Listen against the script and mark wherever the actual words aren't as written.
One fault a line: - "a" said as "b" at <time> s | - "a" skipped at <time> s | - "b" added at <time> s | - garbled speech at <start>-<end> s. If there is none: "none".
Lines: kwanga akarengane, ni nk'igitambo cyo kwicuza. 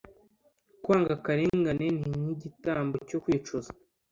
none